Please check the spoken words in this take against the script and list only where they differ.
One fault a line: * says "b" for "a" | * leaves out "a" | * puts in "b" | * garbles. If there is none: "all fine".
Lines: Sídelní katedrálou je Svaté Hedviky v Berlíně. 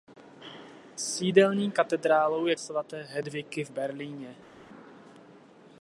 all fine